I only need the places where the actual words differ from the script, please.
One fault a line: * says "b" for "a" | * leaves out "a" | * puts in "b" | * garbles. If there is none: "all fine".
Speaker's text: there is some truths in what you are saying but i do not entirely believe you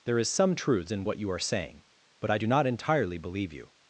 all fine